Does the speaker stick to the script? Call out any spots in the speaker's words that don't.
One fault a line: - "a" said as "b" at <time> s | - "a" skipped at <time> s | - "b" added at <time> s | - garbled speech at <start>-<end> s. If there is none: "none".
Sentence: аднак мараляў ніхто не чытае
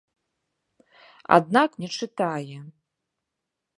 - "мараляў ніхто" skipped at 1.7 s